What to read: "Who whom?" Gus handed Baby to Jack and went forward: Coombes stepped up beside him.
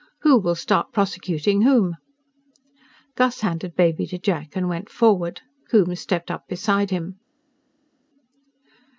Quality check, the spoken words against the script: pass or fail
fail